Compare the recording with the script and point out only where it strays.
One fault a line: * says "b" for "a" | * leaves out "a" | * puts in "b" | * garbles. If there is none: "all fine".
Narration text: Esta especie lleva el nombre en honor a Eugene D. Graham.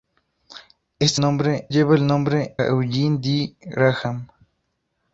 * says "nombre" for "especie"
* leaves out "en honor a"